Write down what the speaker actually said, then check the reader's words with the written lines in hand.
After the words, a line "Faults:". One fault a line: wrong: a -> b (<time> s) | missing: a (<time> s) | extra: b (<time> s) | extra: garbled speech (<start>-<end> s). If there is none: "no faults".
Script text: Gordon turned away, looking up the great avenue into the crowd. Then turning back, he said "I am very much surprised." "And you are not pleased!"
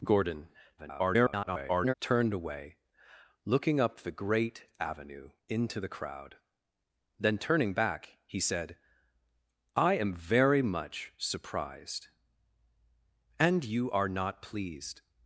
Gordon [garbled] turned away, looking up the great avenue into the crowd. Then turning back, he said "I am very much surprised." "And you are not pleased!"
Faults:
extra: garbled speech (0.8-1.9 s)